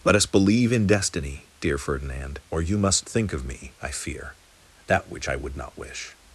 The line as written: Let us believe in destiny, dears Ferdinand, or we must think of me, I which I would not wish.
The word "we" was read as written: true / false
false